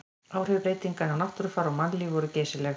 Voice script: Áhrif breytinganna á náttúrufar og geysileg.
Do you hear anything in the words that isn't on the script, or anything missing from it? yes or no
yes